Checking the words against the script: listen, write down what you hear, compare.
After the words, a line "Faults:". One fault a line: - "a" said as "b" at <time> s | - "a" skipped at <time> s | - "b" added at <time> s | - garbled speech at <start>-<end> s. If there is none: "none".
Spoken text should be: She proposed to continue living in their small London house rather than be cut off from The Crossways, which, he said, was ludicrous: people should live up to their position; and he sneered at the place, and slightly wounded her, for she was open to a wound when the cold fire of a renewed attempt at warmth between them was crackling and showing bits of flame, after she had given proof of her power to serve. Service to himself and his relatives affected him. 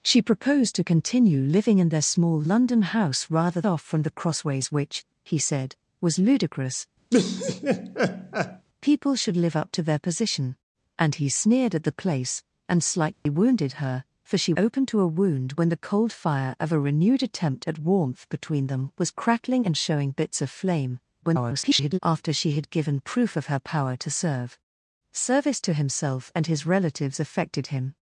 She proposed to continue living in their small London house rather off from The Crossways, which, he said, was ludicrous: people should live up to their position; and he sneered at the place, and slightly wounded her, for she open to a wound when the cold fire of a renewed attempt at warmth between them was crackling and showing bits of flame, [garbled] after she had given proof of her power to serve. Service to himself and his relatives affected him.
Faults:
- "than be cut" skipped at 3.6 s
- "was" skipped at 14.5 s
- garbled speech at 21.2-22.0 s